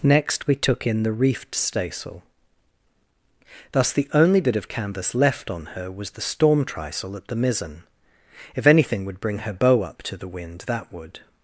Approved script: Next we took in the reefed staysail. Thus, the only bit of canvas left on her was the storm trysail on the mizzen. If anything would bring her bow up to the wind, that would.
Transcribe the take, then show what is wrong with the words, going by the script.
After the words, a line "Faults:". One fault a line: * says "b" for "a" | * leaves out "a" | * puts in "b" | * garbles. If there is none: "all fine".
Next we took in the reefed staysail. Thus, the only bit of canvas left on her was the storm trysail at the mizzen. If anything would bring her bow up to the wind, that would.
Faults:
* says "at" for "on"